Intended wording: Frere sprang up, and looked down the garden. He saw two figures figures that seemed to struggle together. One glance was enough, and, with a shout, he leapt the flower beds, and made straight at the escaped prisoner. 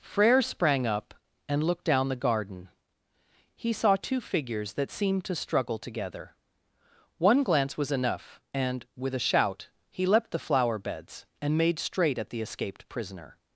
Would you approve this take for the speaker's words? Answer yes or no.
no